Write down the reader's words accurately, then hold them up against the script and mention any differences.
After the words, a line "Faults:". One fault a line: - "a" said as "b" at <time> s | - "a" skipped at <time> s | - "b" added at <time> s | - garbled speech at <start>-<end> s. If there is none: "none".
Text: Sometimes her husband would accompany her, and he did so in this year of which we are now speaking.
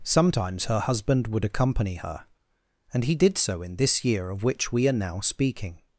Sometimes her husband would accompany her, and he did so in this year of which we are now speaking.
Faults:
none